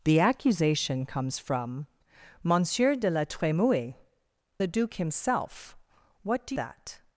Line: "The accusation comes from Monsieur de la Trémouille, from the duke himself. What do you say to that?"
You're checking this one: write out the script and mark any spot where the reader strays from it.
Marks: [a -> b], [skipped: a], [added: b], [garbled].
"The accusation comes from Monsieur de la Trémouille, [skipped: from] the duke himself. What do [skipped: you say to] that?"